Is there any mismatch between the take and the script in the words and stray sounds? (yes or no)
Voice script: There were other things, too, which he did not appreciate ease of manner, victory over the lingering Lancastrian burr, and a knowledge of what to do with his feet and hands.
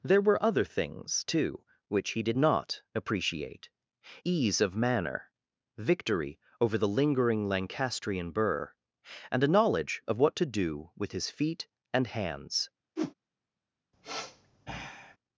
yes